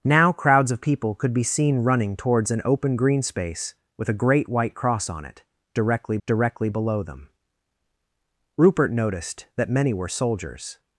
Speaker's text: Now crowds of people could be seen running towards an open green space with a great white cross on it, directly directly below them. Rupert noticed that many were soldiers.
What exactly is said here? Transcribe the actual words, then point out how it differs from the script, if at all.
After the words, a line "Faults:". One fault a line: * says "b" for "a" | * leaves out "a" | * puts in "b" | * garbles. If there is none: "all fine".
Now crowds of people could be seen running towards an open green space with a great white cross on it, directly directly below them. Rupert noticed that many were soldiers.
Faults:
all fine